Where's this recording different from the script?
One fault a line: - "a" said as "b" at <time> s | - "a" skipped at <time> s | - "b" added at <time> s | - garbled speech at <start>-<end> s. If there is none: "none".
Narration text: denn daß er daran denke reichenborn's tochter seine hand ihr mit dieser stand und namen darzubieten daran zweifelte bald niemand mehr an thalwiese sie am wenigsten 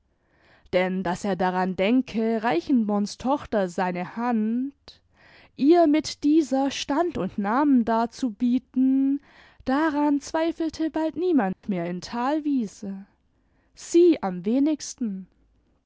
- "an" said as "in" at 11.8 s